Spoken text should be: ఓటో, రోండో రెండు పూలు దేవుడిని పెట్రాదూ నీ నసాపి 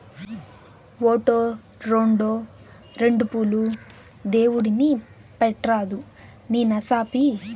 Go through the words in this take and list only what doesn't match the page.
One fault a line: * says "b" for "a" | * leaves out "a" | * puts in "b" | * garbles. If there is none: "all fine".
all fine